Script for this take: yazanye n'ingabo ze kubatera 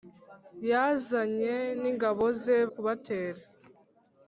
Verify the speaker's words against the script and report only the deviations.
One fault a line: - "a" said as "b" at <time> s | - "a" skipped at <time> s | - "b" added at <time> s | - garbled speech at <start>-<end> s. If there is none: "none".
none